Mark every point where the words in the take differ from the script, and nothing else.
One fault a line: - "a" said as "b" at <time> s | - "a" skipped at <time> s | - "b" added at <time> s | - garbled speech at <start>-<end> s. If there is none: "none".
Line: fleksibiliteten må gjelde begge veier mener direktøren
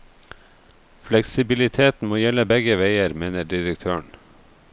none